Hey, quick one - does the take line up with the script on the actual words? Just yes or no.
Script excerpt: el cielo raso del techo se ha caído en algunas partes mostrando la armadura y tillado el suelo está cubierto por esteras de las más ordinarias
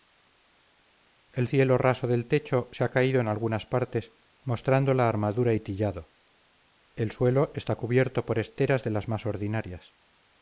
yes